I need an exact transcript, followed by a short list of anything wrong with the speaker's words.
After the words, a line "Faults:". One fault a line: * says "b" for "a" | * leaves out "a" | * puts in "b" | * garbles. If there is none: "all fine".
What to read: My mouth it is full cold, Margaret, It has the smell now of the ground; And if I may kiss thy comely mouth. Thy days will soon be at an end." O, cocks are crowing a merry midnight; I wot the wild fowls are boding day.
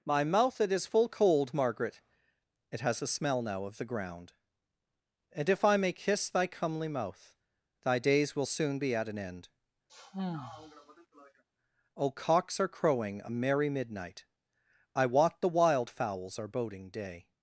My mouth it is full cold, Margaret, It has a smell now of the ground; And if I may kiss thy comely mouth. Thy days will soon be at an end." O, cocks are crowing a merry midnight; I wot the wild fowls are boding day.
Faults:
* says "a" for "the"